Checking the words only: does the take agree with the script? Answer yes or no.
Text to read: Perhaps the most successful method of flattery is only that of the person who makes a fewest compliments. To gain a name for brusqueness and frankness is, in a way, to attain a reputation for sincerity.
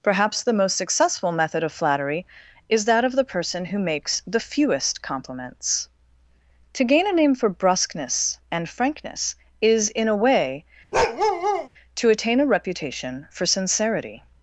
no